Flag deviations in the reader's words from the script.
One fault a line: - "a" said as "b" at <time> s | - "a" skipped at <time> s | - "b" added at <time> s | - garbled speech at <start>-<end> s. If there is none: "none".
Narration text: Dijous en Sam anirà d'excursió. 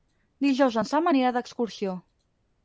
none